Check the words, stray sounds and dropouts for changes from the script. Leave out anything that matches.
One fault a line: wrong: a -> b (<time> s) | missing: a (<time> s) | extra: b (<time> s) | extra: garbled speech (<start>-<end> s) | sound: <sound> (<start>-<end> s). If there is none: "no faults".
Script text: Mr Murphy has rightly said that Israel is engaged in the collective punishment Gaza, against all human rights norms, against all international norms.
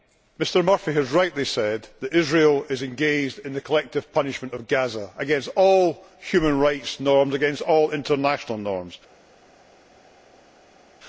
extra: of (4.5 s)